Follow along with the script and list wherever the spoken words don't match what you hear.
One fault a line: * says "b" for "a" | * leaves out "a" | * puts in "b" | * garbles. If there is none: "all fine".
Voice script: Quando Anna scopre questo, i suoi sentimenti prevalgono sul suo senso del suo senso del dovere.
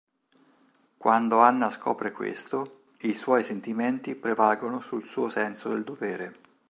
* leaves out "suo senso del"